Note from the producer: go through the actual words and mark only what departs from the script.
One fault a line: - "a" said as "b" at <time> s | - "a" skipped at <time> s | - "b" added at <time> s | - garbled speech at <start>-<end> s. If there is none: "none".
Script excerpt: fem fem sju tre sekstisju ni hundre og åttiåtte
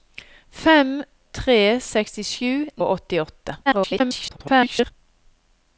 - "fem sju" skipped at 0.9 s
- "ni hundre" skipped at 2.5 s
- garbled speech at 3.7-4.9 s